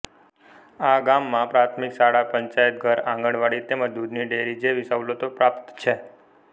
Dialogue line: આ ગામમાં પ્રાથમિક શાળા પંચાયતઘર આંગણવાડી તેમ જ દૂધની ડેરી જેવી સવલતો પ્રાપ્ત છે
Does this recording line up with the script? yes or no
yes